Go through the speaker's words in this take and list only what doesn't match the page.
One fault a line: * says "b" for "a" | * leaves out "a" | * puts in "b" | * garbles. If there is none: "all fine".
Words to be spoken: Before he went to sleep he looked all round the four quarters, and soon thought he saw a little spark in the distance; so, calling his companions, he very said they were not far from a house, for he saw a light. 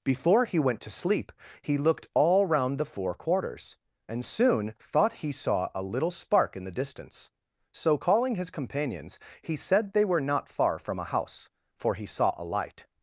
* leaves out "very"